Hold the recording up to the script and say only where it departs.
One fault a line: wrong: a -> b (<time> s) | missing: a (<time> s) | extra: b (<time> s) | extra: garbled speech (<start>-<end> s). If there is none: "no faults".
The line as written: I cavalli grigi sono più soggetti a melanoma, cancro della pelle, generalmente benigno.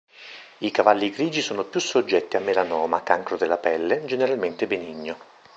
no faults